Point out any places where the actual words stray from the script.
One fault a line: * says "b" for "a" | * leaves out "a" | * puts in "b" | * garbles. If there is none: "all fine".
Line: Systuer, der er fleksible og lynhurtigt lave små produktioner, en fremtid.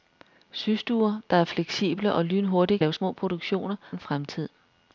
all fine